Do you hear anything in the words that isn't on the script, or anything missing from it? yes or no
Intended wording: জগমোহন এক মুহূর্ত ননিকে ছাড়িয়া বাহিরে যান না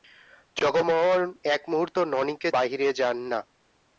yes